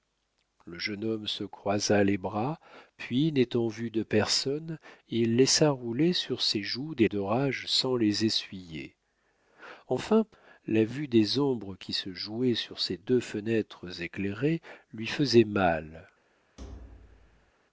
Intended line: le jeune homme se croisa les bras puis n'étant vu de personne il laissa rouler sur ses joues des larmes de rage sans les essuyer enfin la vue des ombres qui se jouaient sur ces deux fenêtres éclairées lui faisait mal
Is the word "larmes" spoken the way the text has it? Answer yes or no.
no